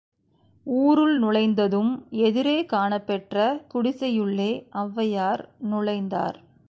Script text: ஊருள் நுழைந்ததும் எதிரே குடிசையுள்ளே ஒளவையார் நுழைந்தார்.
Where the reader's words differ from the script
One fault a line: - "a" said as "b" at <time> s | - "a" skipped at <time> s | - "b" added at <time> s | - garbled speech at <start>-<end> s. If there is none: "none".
- "காணப்பெற்ற" added at 2.7 s